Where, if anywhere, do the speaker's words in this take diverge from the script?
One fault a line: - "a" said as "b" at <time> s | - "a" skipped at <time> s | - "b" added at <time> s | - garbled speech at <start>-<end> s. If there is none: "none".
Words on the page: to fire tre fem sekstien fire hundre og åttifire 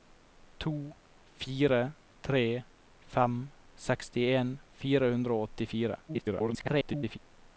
- garbled speech at 6.1-7.2 s